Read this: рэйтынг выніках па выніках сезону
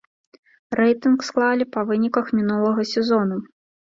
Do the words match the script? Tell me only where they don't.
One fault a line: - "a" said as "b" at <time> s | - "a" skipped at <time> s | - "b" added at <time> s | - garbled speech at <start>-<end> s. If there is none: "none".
- "выніках" said as "склалі" at 1.3 s
- "мінулага" added at 2.4 s